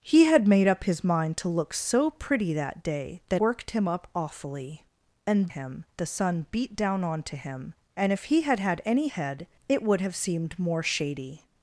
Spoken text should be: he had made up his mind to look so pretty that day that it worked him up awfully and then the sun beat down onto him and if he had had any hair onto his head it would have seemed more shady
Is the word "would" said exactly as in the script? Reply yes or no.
yes